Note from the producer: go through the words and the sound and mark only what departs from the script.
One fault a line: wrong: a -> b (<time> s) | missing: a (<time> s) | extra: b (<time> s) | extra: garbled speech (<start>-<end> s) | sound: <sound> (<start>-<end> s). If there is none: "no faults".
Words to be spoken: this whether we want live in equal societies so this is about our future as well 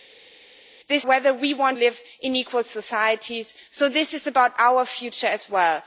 no faults